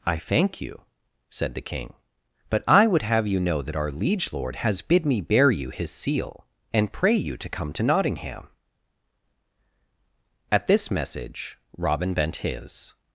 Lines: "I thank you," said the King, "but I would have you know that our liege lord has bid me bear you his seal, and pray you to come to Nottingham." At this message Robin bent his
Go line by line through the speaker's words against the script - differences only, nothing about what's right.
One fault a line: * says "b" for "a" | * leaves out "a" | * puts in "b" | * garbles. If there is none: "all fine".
all fine